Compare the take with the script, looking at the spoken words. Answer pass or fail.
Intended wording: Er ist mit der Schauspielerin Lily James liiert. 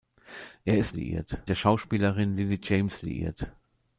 fail